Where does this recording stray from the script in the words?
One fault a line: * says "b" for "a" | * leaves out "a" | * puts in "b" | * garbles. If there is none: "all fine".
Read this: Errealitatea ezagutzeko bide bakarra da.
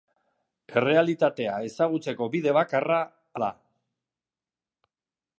all fine